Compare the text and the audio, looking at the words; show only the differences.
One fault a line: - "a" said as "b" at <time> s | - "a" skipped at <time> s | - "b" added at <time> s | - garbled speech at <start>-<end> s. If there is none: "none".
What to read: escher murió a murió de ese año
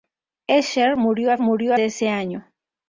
none